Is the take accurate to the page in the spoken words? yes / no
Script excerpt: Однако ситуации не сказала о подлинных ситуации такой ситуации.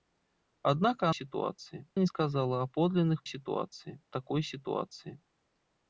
yes